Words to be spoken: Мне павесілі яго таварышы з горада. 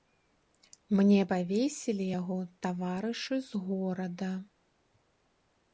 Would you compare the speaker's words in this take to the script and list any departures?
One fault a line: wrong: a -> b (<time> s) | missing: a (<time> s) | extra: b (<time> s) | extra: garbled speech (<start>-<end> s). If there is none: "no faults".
no faults